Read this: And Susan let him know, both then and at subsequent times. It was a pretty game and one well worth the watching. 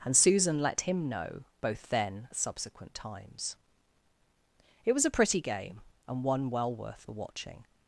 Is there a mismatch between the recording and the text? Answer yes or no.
yes